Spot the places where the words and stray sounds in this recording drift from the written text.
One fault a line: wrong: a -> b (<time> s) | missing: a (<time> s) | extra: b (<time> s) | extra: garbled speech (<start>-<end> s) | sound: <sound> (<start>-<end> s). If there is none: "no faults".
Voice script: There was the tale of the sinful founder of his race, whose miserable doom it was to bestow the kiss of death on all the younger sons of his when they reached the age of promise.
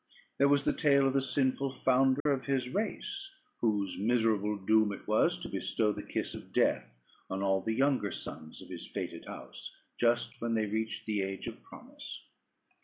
sound: dropout (2.2-2.3 s)
extra: fated house just (8.9 s)